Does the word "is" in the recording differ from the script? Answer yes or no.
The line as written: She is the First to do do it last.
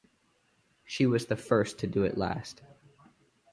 yes